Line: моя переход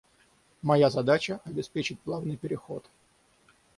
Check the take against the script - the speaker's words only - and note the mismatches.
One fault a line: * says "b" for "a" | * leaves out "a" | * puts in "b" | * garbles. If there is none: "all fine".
* puts in "задача обеспечить плавный"